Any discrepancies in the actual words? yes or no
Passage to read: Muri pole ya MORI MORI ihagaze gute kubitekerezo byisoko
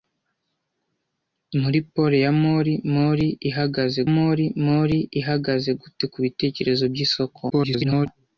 yes